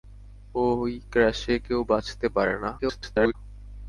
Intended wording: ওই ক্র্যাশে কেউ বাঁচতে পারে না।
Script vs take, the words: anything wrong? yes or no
yes